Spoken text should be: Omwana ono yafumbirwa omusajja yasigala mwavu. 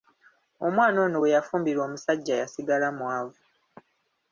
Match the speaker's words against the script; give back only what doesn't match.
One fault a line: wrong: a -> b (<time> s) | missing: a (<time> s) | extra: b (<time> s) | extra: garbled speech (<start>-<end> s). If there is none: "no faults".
extra: bwe (1.2 s)